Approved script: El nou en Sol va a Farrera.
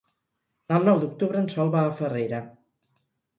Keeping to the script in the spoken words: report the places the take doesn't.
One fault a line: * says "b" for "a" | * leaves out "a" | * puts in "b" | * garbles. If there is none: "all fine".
* puts in "d'octubre"